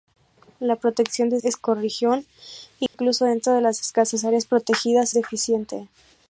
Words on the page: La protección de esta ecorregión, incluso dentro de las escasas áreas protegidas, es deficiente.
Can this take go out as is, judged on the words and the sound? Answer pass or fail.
fail